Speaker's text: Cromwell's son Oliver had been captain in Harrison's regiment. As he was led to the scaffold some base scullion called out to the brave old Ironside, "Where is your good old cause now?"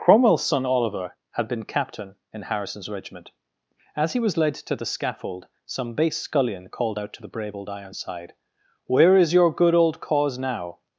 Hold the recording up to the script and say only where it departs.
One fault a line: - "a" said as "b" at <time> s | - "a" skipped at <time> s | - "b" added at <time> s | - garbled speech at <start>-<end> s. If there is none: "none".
none